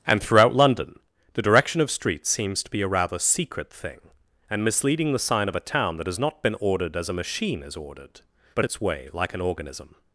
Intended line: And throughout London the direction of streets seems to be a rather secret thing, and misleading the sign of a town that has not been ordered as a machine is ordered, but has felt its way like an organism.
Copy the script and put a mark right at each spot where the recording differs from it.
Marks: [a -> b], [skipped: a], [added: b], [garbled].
And throughout London the direction of streets seems to be a rather secret thing, and misleading the sign of a town that has not been ordered as a machine is ordered, but [skipped: has felt] its way like an organism.